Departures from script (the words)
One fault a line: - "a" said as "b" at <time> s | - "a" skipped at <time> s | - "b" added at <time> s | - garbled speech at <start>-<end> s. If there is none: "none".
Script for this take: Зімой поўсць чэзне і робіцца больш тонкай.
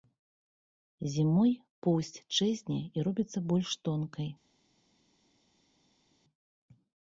none